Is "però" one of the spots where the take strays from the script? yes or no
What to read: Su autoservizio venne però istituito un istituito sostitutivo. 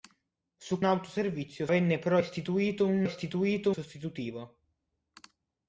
no